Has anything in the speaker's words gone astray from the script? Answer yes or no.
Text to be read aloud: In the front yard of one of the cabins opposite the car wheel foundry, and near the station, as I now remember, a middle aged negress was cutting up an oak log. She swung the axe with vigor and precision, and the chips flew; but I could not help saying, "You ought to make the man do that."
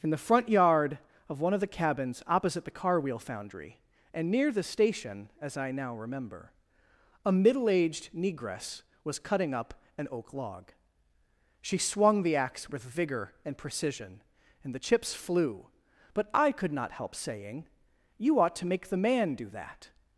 no